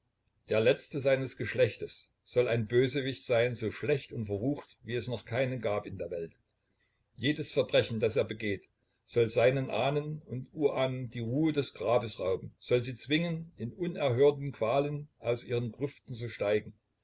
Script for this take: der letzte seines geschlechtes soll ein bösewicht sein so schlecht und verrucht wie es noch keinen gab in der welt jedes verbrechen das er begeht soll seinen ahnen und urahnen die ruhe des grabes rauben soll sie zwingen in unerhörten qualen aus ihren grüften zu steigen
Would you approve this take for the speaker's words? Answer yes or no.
yes